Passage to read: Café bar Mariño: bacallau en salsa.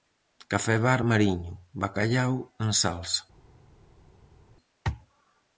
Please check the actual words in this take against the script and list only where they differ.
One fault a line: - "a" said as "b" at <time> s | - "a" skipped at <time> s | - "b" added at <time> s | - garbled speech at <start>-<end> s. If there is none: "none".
none